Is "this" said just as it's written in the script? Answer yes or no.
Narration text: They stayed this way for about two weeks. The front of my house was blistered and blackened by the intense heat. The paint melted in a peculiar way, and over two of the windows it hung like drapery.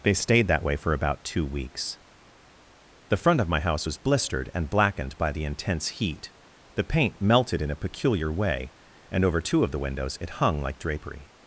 no